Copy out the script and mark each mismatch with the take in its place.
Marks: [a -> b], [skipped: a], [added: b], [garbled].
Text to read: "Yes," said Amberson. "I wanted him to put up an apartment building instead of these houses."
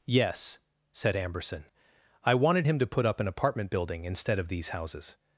"Yes," said Amberson. "I wanted him to put up an apartment building instead of these houses."